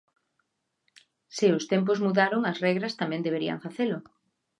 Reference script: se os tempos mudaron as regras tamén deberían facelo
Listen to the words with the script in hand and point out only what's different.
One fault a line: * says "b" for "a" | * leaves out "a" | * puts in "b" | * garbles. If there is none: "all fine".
all fine